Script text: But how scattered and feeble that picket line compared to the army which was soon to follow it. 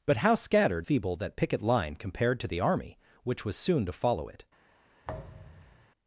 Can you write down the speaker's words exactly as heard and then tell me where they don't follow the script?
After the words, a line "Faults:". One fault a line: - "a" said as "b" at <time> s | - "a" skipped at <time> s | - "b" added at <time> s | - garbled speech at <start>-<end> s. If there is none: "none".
But how scattered feeble that picket line compared to the army which was soon to follow it.
Faults:
- "and" skipped at 0.9 s